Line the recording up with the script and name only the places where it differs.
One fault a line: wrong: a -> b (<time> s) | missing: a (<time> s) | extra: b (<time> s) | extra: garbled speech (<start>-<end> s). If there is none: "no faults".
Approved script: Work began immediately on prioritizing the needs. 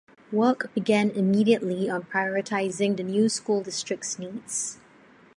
extra: new school district's (3.0 s)